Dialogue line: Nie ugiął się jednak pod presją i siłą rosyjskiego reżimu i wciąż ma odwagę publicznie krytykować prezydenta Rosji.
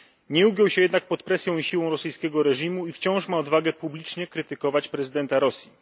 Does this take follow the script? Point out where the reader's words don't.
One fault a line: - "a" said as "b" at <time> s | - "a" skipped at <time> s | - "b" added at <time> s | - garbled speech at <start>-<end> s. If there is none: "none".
none